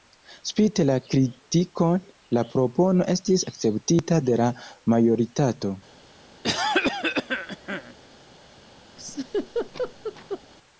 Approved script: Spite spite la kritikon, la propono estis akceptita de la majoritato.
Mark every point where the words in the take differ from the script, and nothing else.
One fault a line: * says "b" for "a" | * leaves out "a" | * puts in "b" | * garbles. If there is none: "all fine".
* leaves out "spite"